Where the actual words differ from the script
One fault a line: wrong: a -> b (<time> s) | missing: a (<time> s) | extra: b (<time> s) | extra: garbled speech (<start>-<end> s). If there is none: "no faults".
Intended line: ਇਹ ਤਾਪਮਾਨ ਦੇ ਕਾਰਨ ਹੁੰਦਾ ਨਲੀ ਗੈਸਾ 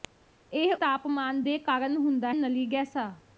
no faults